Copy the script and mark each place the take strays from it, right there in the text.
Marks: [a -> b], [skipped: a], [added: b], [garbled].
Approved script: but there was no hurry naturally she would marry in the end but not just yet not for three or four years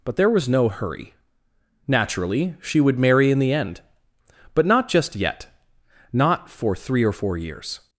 but there was no hurry naturally she would marry in the end but not just yet not for three or four years